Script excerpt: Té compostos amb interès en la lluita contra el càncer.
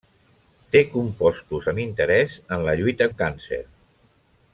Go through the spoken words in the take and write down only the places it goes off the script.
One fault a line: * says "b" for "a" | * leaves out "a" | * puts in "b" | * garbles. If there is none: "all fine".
* leaves out "contra"